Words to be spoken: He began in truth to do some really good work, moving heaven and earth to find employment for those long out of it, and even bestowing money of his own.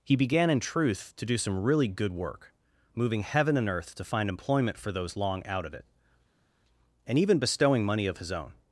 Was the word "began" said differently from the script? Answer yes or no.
no